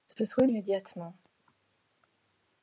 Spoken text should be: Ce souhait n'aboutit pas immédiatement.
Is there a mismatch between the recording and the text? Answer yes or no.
yes